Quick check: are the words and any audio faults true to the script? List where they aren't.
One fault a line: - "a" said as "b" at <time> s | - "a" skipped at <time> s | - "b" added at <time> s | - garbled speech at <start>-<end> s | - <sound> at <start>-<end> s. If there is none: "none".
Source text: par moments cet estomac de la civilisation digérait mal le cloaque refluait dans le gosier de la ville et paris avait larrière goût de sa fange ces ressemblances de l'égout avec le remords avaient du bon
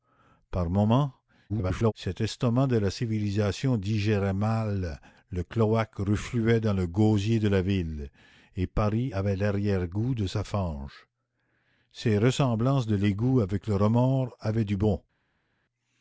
- garbled speech at 1.5-1.9 s